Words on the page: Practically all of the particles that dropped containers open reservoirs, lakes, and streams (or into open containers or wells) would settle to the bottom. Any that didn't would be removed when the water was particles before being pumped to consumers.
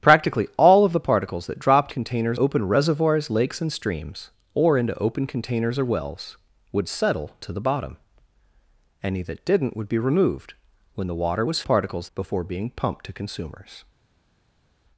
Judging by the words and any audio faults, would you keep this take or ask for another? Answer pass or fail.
pass